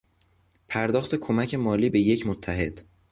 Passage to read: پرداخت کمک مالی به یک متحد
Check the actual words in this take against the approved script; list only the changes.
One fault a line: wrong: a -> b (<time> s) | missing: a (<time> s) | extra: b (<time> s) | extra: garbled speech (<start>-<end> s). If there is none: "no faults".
no faults